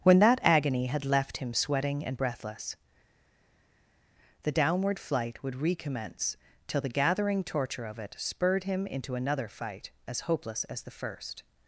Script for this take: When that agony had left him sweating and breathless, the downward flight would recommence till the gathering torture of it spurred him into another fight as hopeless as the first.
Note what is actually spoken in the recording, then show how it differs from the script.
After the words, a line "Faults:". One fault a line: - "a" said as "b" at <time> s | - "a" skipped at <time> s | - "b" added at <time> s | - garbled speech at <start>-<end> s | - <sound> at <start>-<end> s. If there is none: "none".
When that agony had left him sweating and breathless, the downward flight would recommence till the gathering torture of it spurred him into another fight as hopeless as the first.
Faults:
none